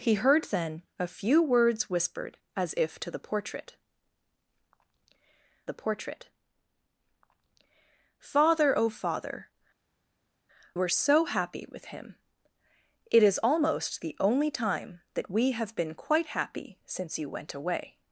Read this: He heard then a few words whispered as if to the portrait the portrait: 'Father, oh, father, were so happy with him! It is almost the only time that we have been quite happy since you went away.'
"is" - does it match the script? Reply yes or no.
yes